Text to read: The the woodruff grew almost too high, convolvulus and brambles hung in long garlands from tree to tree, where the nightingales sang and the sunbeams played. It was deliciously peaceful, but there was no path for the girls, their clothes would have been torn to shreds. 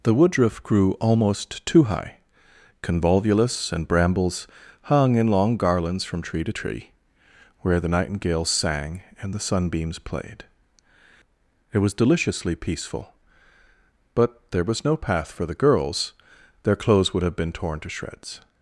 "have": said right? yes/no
yes